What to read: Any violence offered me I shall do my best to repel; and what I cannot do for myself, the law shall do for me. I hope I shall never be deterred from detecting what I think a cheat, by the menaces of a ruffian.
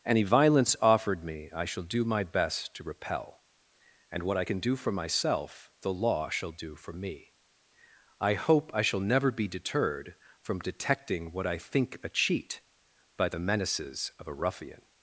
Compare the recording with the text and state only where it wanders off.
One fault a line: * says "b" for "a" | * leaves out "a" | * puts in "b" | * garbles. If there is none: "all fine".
* says "can" for "cannot"